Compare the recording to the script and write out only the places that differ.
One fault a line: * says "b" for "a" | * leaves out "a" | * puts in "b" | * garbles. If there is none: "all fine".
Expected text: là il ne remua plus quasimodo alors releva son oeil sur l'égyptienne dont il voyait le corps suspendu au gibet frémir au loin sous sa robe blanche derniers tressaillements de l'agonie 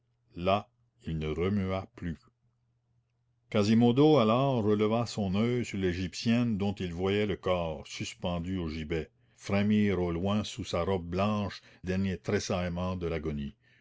all fine